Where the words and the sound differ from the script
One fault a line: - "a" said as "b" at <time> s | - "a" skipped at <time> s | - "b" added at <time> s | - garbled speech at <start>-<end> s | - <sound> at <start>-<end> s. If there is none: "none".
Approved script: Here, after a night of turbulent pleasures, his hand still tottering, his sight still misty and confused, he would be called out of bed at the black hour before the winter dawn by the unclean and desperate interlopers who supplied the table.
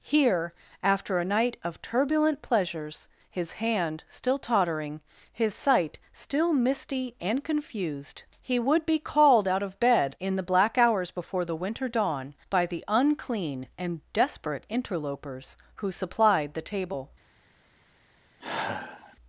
- "at" said as "in" at 10.2 s
- "hour" said as "hours" at 10.8 s
- sigh at 18.4-19.2 s